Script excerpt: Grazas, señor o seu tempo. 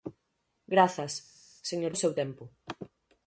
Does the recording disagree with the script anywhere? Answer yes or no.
no